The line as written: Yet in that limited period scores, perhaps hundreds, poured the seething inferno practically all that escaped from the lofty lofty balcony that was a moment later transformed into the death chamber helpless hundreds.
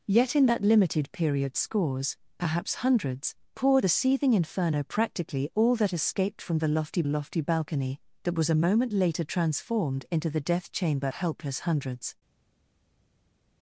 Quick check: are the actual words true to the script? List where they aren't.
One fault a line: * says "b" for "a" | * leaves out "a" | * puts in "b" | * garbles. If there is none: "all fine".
all fine